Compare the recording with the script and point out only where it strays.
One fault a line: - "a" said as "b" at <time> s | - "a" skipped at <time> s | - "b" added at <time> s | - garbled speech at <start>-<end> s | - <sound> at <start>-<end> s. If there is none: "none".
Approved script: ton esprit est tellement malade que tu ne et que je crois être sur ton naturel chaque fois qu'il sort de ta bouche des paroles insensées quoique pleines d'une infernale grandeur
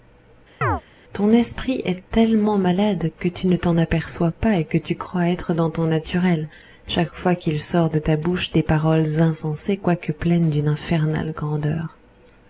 - chirp at 0.6-0.8 s
- "t'en aperçois pas" added at 3.6 s
- "je" said as "tu" at 4.8 s
- "sur" said as "dans" at 5.5 s